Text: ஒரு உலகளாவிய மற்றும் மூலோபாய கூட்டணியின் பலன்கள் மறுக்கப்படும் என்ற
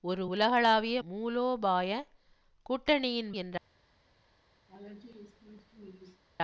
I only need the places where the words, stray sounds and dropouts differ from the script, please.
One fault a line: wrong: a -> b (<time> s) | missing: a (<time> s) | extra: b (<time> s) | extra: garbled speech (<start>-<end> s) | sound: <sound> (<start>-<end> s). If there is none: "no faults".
missing: மற்றும் (1.0 s)
missing: பலன்கள் மறுக்கப்படும் (3.3 s)
sound: laugh (4.7-6.2 s)